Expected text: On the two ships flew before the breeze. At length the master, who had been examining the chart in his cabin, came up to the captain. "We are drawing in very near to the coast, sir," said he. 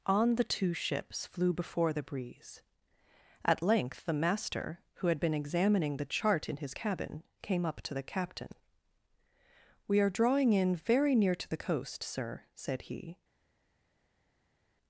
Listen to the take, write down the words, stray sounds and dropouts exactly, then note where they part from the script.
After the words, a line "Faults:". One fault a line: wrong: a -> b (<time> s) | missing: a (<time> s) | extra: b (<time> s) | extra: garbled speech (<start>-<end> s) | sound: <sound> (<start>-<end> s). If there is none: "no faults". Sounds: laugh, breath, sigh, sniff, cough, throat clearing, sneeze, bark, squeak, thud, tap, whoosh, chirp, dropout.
On the two ships flew before the breeze. At length the master, who had been examining the chart in his cabin, came up to the captain. "We are drawing in very near to the coast, sir," said he.
Faults:
no faults